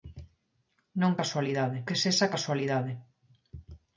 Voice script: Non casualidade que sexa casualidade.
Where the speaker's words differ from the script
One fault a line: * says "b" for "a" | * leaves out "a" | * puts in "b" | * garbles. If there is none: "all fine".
all fine